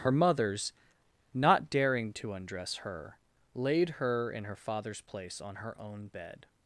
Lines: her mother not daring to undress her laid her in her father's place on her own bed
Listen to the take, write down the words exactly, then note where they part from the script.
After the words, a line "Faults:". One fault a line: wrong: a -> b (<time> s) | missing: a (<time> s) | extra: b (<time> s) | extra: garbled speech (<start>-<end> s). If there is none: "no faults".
her mothers not daring to undress her laid her in her father's place on her own bed
Faults:
wrong: mother -> mothers (0.1 s)